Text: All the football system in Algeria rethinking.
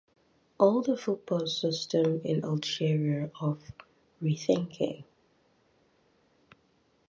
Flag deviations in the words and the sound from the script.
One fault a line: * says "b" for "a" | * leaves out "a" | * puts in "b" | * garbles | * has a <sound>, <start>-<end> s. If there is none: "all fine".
* puts in "of"